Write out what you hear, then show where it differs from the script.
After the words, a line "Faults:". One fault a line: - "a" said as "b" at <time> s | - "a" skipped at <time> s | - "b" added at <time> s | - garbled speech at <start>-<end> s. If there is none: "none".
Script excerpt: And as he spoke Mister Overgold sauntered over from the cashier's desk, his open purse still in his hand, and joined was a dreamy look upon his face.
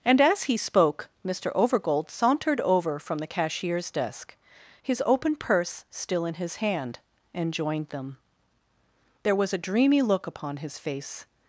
And as he spoke Mister Overgold sauntered over from the cashier's desk, his open purse still in his hand, and joined them. There was a dreamy look upon his face.
Faults:
- "them There" added at 7.9 s